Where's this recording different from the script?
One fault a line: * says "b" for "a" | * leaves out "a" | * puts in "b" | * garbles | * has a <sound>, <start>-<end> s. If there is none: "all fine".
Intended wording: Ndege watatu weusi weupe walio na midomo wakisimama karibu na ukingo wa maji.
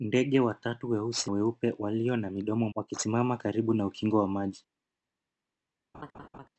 * has a laugh, 5.9-6.5 s